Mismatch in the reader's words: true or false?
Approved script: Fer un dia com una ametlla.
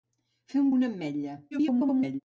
true